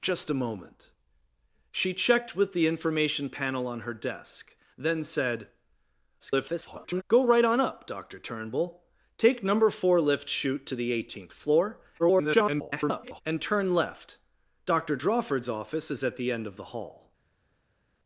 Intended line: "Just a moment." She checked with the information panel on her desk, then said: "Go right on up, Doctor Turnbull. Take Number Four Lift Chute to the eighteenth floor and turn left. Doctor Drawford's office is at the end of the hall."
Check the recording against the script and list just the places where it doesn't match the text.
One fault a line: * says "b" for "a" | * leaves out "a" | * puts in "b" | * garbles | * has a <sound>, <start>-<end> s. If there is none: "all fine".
* garbles
* garbles